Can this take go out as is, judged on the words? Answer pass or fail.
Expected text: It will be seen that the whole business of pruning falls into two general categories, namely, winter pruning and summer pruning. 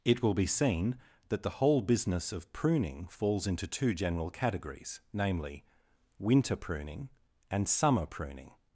pass